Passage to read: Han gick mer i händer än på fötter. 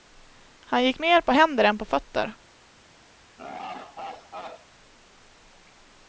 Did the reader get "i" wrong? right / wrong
wrong